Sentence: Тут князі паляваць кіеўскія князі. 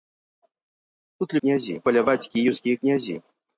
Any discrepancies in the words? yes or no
no